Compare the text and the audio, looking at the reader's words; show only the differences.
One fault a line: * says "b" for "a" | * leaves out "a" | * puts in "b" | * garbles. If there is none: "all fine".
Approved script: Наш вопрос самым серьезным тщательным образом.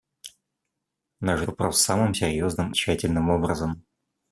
all fine